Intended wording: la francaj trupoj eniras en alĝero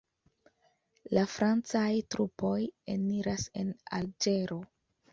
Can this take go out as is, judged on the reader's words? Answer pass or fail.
pass